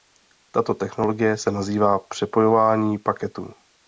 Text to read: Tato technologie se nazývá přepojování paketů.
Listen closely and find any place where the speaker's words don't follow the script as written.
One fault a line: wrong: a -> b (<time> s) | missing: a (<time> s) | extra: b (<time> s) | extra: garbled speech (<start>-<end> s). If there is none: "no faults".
no faults